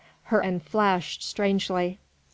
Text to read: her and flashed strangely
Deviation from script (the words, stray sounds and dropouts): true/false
false